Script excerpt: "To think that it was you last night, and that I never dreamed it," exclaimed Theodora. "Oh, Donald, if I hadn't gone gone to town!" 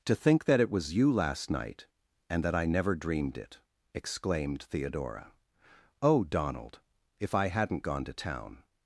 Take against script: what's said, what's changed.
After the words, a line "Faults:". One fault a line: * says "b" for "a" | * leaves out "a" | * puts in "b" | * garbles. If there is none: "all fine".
"To think that it was you last night, and that I never dreamed it," exclaimed Theodora. "Oh, Donald, if I hadn't gone to town!"
Faults:
* leaves out "gone"